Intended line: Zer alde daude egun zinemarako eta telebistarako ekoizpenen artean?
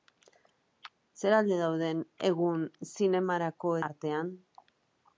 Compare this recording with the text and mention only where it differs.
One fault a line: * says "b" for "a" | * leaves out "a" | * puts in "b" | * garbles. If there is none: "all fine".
* leaves out "eta telebistarako ekoizpenen"